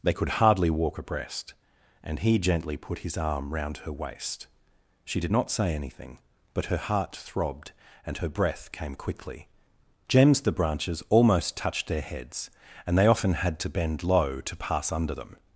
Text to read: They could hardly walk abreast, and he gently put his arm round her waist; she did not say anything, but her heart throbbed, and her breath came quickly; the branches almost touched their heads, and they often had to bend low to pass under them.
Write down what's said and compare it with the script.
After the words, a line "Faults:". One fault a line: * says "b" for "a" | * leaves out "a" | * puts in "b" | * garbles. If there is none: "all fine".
They could hardly walk abreast, and he gently put his arm round her waist; she did not say anything, but her heart throbbed, and her breath came quickly; gems the branches almost touched their heads, and they often had to bend low to pass under them.
Faults:
* puts in "gems"